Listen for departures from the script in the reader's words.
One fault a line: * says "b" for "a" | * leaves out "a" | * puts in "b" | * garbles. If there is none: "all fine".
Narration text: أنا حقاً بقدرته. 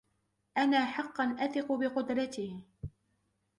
* puts in "أثق"